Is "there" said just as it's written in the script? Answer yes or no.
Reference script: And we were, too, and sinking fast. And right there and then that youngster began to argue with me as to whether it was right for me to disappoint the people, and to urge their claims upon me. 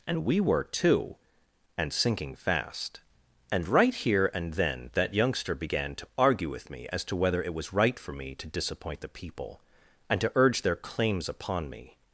no